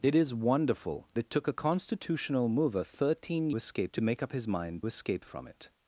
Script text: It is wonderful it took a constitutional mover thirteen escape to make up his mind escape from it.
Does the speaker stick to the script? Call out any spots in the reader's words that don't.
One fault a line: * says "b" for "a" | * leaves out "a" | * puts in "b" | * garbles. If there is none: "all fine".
all fine